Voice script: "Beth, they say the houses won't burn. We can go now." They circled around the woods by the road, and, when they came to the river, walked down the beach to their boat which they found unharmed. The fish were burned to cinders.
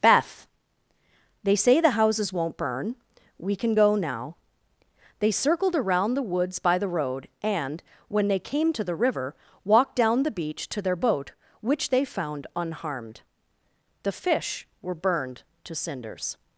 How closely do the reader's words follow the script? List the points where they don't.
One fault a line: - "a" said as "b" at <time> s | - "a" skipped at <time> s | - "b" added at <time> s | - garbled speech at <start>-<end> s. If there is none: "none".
none